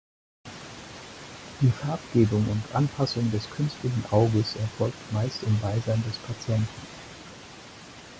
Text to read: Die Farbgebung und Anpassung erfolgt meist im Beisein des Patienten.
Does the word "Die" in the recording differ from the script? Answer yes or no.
no